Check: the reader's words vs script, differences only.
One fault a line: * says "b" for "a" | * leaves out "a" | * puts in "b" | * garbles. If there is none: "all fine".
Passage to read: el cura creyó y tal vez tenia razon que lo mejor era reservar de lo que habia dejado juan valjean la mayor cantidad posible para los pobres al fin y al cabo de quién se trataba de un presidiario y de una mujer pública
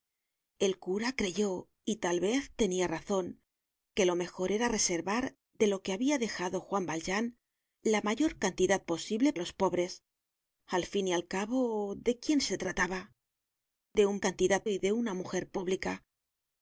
* leaves out "para"
* says "cantidad" for "presidiario"